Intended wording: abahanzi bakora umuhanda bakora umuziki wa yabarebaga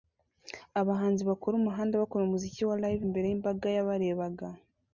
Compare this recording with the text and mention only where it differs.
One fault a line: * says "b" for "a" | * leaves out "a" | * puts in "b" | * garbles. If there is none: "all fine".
* puts in "live imbere yimbaga"